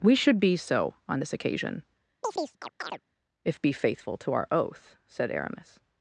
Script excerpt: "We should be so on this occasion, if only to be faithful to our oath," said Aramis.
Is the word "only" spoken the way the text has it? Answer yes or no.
no